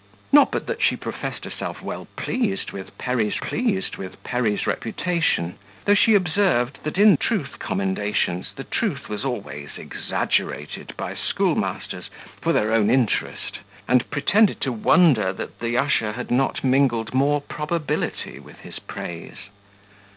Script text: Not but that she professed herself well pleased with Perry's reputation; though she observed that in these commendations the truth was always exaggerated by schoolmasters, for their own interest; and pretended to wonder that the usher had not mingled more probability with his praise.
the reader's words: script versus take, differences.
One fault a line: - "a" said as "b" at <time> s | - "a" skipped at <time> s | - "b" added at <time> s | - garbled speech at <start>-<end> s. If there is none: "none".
- "pleased with Perry's" added at 3.4 s
- "these" said as "truth" at 7.1 s